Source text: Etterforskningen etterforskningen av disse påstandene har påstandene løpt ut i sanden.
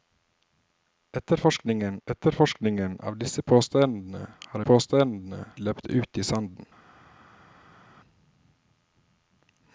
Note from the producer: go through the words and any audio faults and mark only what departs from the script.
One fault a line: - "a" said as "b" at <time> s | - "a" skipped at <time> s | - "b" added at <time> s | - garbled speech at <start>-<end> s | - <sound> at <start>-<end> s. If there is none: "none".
none